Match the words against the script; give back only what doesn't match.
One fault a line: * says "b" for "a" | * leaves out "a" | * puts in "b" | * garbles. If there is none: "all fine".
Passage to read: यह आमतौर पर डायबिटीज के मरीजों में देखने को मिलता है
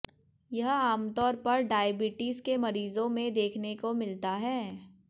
all fine